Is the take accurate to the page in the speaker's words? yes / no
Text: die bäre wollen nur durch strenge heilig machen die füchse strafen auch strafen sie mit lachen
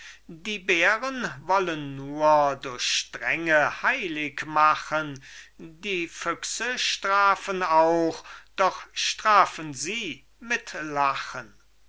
no